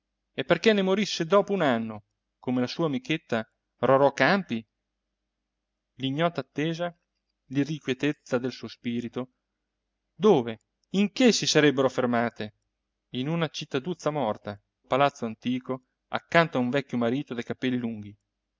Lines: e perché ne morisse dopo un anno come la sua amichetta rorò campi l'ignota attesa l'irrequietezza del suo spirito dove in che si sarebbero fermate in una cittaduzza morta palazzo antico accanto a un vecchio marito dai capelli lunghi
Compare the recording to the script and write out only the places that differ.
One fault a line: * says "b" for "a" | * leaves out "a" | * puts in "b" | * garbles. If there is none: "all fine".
all fine